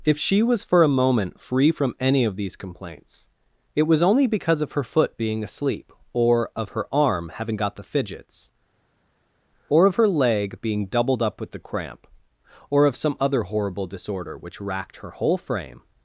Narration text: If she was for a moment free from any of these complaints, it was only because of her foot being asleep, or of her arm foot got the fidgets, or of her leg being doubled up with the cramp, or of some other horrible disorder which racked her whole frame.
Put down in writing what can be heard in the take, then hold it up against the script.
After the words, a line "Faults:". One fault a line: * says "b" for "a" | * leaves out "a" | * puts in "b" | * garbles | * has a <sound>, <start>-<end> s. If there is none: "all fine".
If she was for a moment free from any of these complaints, it was only because of her foot being asleep, or of her arm having got the fidgets, or of her leg being doubled up with the cramp, or of some other horrible disorder which racked her whole frame.
Faults:
* says "having" for "foot"